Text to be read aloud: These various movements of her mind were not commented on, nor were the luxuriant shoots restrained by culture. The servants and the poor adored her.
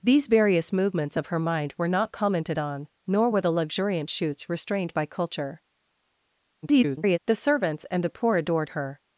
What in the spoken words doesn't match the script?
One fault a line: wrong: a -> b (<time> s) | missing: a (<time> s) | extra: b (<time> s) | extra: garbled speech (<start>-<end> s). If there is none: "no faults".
extra: garbled speech (6.6-7.2 s)